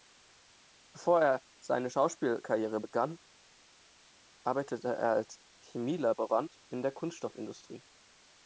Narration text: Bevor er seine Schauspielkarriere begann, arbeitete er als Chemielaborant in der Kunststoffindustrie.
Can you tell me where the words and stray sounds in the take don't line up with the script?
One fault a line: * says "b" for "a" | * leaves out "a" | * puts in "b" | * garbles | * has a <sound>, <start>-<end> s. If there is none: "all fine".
all fine